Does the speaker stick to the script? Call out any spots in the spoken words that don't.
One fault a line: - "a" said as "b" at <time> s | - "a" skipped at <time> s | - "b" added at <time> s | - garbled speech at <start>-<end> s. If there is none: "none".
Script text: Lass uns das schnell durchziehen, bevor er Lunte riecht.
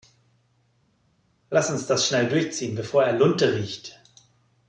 none